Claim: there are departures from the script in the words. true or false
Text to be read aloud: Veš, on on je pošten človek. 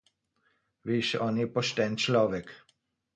true